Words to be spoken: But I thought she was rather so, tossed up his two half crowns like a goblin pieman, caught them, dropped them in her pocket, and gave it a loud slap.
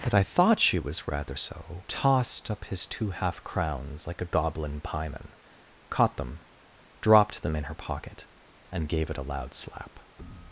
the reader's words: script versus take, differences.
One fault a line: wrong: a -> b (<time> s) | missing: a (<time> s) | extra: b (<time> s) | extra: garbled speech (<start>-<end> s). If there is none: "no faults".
no faults